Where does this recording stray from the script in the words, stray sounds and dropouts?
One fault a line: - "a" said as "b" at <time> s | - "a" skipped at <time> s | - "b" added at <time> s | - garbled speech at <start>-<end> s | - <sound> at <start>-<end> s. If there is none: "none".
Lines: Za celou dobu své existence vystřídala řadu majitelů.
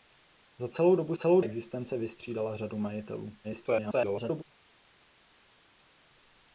- "své" said as "celou" at 1.1 s
- garbled speech at 3.4-4.4 s